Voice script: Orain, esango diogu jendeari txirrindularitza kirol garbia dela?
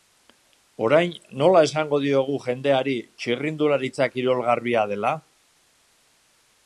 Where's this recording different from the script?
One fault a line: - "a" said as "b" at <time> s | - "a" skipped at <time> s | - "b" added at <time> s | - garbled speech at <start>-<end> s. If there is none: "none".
- "nola" added at 1.4 s